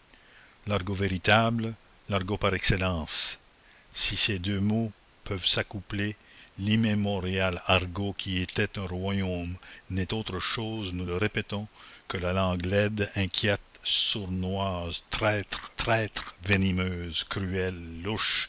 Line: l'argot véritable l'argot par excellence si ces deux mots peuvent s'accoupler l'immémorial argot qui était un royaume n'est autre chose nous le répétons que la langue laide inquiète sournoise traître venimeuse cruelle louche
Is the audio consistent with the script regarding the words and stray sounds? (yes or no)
no